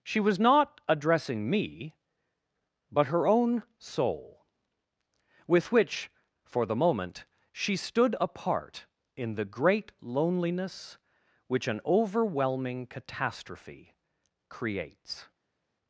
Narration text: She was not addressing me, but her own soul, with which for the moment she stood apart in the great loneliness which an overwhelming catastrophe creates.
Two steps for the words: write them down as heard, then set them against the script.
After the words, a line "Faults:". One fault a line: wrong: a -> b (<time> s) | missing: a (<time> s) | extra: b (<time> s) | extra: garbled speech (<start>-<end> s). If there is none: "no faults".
She was not addressing me, but her own soul, with which for the moment she stood apart in the great loneliness which an overwhelming catastrophe creates.
Faults:
no faults